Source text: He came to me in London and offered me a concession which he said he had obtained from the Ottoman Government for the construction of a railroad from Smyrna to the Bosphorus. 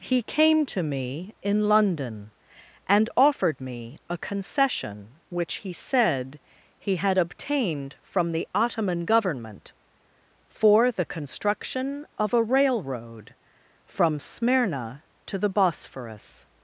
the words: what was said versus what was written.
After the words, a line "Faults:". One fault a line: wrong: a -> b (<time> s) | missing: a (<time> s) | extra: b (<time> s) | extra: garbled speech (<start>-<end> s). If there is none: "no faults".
He came to me in London and offered me a concession which he said he had obtained from the Ottoman Government for the construction of a railroad from Smyrna to the Bosphorus.
Faults:
no faults